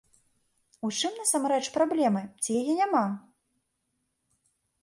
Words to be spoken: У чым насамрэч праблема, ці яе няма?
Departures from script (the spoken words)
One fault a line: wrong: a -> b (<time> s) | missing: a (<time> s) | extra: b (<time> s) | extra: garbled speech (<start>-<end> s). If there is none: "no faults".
no faults